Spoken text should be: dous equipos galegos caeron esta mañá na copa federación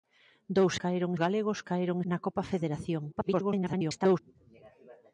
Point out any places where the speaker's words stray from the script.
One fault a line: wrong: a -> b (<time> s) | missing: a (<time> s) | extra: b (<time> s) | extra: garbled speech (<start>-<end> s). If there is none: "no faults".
wrong: equipos -> caeron (0.8 s)
missing: esta mañá (2.0 s)
extra: garbled speech (3.1-4.2 s)